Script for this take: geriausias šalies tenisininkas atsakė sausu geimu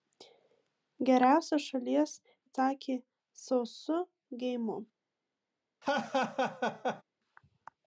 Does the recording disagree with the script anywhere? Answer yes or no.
yes